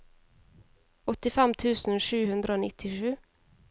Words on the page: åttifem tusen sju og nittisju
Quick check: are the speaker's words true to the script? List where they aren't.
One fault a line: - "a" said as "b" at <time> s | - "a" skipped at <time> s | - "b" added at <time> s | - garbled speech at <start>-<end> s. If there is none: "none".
- "hundre" added at 2.3 s